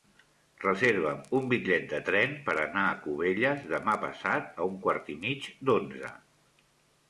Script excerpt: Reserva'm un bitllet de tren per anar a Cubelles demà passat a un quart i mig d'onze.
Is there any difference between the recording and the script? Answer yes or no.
no